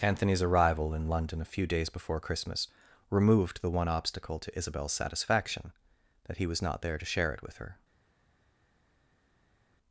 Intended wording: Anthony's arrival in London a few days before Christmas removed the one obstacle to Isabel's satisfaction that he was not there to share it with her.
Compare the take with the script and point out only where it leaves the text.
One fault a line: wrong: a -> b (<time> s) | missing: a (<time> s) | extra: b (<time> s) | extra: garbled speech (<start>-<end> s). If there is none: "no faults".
no faults